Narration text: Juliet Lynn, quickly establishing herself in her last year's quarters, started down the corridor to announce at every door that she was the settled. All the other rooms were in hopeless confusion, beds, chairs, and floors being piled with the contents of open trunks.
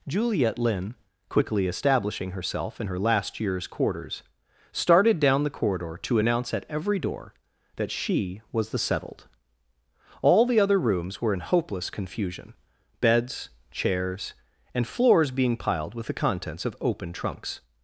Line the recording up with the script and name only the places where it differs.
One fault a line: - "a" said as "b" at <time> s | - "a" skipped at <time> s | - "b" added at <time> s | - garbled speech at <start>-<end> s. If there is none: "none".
none